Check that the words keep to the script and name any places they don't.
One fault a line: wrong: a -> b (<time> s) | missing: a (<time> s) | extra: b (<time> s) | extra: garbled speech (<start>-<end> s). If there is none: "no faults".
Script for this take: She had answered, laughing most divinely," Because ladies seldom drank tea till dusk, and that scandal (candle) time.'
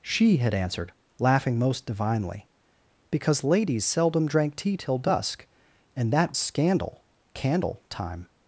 no faults